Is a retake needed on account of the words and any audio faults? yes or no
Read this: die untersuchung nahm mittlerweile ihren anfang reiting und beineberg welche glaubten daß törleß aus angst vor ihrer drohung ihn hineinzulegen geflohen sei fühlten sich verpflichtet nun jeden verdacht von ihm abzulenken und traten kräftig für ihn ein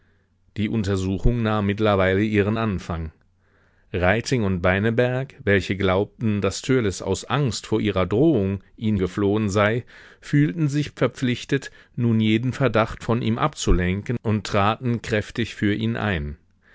yes